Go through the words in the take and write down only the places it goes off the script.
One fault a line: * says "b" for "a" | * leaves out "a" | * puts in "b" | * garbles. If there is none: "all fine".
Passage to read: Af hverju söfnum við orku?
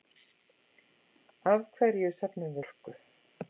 * leaves out "við"